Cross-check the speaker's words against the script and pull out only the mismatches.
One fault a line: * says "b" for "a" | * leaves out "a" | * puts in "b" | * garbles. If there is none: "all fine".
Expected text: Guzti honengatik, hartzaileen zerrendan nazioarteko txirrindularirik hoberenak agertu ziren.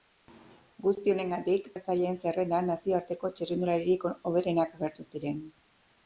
all fine